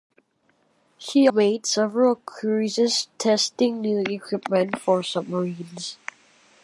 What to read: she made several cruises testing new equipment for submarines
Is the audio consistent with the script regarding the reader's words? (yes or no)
yes